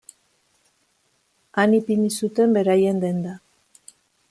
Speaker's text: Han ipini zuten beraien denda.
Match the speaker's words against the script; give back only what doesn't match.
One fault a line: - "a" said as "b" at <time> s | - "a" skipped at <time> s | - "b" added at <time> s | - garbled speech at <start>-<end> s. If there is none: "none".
none